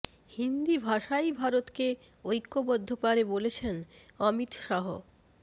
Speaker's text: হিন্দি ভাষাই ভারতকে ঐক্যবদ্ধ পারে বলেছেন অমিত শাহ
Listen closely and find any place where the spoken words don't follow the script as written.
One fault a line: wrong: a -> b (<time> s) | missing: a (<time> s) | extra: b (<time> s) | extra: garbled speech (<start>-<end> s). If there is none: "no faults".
no faults